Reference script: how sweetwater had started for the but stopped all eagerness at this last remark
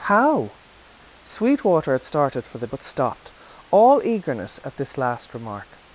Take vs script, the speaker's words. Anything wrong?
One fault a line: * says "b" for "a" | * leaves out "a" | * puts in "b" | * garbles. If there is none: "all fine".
all fine